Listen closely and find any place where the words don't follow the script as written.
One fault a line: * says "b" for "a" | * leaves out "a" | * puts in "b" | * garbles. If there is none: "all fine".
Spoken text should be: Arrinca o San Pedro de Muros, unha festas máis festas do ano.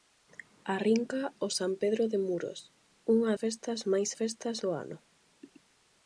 all fine